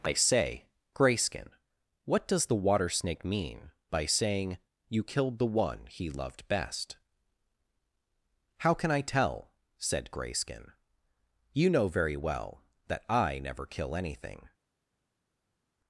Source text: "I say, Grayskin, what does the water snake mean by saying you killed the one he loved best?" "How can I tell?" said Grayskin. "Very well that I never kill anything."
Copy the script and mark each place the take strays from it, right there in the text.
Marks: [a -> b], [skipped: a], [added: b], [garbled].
"I say, Grayskin, what does the water snake mean by saying you killed the one he loved best?" "How can I tell?" said Grayskin. [added: You know] "Very well that I never kill anything."